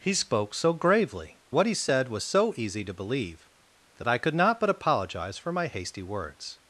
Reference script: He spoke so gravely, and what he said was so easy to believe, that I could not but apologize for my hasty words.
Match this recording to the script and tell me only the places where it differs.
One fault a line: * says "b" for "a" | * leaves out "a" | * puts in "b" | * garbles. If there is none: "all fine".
* leaves out "and"